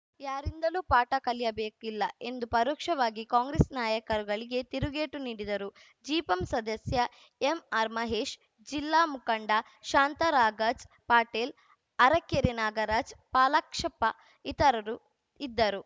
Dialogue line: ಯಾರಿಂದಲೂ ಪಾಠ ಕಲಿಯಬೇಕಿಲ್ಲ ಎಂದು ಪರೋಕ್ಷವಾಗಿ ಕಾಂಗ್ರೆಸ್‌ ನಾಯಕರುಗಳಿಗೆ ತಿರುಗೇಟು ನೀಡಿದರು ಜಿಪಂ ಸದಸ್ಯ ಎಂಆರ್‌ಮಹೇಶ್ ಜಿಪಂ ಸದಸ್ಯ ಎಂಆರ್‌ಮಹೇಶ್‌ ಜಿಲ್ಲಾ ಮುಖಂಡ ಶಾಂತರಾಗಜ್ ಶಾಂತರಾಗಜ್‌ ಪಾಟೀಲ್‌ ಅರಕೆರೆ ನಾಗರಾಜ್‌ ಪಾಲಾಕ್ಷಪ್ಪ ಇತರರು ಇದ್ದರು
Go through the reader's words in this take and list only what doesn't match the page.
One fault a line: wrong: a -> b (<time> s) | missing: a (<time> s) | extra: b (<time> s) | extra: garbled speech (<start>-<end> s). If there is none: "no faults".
missing: ಜಿಪಂ ಸದಸ್ಯ ಎಂಆರ್‌ಮಹೇಶ್ (8.3 s)
missing: ಶಾಂತರಾಗಜ್ (10.8 s)